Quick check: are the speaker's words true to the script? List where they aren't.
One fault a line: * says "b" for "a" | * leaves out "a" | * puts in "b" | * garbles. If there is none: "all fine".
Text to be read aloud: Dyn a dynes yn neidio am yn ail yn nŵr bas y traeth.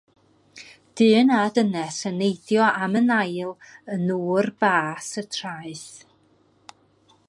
all fine